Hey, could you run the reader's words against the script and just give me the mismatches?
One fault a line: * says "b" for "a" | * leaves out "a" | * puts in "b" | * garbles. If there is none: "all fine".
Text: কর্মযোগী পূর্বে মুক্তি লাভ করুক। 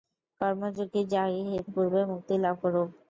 all fine